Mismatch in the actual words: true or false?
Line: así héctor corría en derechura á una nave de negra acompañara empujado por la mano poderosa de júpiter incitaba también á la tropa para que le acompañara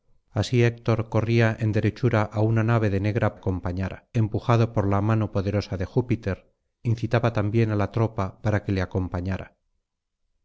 false